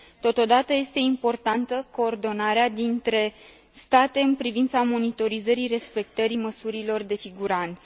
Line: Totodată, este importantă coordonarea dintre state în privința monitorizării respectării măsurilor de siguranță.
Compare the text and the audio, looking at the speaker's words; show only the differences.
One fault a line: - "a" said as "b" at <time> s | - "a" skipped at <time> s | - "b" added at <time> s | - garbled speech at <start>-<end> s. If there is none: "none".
none